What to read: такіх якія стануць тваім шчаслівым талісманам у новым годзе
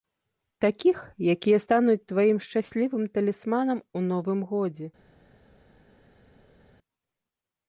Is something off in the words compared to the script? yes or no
no